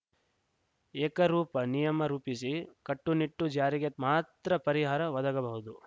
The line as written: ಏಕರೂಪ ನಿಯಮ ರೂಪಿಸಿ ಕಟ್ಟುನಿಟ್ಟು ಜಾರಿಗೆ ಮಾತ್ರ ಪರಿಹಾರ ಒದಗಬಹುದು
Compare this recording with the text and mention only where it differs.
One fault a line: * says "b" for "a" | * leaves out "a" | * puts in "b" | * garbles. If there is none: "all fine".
all fine